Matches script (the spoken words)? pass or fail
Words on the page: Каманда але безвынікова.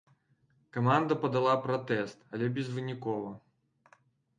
fail